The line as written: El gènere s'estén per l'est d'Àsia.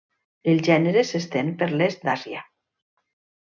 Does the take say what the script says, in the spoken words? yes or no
yes